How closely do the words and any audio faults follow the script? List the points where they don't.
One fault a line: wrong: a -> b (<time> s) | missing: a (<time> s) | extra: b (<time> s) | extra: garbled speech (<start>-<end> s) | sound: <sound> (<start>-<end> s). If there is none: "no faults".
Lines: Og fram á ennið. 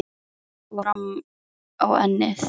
sound: dropout (0.9-1.0 s)